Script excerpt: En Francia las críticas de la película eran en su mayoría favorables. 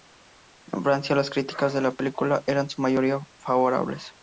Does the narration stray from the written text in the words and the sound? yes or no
no